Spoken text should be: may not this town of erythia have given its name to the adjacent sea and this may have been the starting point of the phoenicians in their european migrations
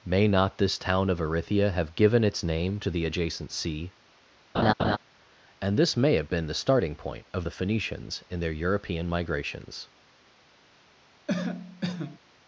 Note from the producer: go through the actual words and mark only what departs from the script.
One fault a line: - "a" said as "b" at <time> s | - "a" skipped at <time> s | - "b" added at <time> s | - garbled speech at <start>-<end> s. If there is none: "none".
none